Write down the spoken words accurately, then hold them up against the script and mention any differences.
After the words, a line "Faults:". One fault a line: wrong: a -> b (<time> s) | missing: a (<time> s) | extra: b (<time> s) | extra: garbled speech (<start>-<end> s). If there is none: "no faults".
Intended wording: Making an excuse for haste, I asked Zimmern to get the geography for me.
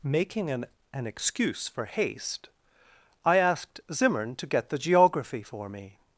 Making an an excuse for haste, I asked Zimmern to get the geography for me.
Faults:
extra: an (0.9 s)